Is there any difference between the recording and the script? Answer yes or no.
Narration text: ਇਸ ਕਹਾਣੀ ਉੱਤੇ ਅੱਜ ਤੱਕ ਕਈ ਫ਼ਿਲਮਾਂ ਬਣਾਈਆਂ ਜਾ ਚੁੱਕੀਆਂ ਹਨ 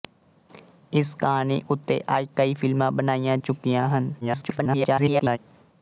yes